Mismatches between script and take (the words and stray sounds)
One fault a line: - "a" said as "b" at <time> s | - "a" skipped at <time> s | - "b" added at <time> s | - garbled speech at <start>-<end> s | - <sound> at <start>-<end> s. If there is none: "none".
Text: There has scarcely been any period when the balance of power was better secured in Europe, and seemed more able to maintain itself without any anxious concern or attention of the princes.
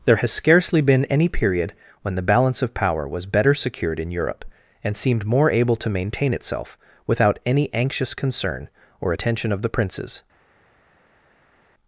none